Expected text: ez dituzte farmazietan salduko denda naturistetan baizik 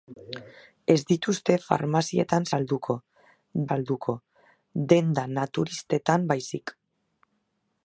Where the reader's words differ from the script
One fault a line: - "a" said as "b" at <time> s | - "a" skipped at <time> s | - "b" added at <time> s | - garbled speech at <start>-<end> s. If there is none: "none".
- "salduko" added at 3.7 s